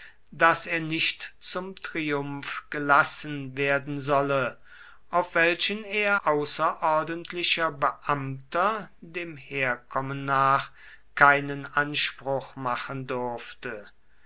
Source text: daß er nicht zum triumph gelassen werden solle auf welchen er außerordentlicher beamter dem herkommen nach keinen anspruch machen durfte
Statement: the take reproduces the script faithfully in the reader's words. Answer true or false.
true